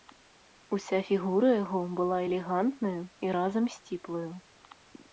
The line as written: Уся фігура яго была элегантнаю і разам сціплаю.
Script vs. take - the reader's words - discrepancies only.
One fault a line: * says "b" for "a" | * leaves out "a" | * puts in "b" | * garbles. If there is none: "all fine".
all fine